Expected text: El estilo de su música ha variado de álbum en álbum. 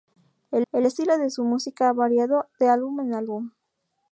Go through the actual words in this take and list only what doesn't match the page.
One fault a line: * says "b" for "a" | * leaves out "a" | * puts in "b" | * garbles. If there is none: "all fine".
* puts in "el"